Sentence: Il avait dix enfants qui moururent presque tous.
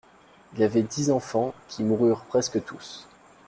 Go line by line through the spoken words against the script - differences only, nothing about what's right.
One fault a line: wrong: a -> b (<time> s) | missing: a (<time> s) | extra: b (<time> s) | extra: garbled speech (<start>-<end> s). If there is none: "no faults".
no faults